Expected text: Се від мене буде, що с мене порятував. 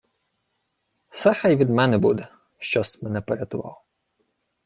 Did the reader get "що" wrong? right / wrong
right